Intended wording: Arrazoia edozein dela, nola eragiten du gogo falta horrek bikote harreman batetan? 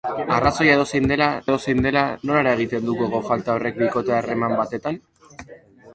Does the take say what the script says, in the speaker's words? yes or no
no